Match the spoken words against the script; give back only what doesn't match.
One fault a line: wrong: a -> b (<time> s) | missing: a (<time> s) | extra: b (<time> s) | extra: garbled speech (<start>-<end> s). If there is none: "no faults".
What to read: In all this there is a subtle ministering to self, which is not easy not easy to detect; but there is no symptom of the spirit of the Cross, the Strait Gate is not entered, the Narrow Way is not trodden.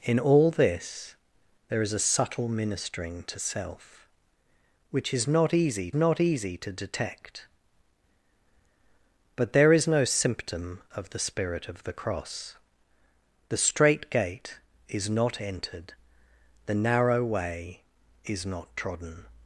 no faults